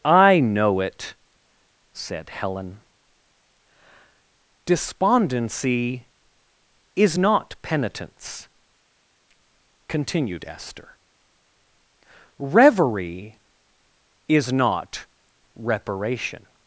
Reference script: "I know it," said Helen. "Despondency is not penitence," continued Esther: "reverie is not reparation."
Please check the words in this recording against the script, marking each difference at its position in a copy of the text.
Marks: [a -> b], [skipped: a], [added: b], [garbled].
"I know it," said Helen. "Despondency is not penitence," continued Esther: "reverie is not reparation."